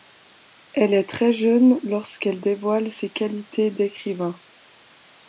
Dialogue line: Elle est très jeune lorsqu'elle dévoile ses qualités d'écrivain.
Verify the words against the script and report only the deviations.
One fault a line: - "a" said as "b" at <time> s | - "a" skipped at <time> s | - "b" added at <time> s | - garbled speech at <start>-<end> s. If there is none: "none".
none